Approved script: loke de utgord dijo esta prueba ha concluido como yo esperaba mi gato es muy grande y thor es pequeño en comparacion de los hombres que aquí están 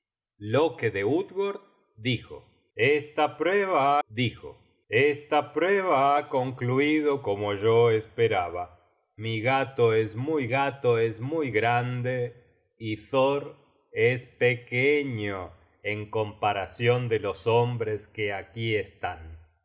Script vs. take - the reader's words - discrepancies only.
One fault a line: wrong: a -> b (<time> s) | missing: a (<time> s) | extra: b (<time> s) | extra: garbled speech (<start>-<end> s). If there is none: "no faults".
extra: dijo esta prueba (4.1 s)
extra: gato es muy (10.5 s)